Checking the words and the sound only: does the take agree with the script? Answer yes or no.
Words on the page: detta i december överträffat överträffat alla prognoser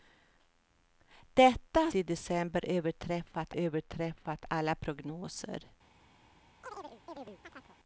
no